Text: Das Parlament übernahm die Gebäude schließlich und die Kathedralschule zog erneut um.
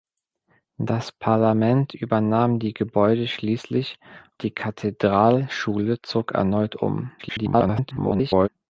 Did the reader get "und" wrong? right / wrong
wrong